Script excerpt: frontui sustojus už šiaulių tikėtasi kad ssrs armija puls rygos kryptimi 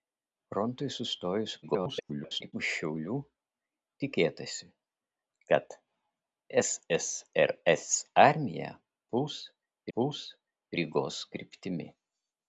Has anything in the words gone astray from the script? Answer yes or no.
yes